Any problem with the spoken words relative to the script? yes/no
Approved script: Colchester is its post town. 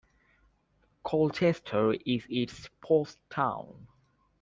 no